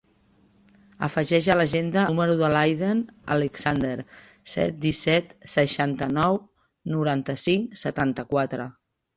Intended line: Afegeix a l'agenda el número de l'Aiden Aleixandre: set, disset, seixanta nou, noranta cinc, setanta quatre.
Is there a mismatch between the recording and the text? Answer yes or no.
yes